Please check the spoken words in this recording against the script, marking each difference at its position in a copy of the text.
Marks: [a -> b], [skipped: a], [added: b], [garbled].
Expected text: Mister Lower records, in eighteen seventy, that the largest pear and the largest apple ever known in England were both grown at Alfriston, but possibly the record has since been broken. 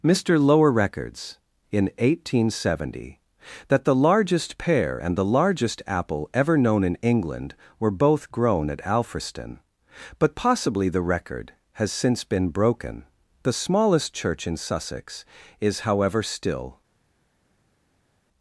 Mister Lower records, in eighteen seventy, that the largest pear and the largest apple ever known in England were both grown at Alfriston, but possibly the record has since been broken. [added: The smallest church in Sussex is however still]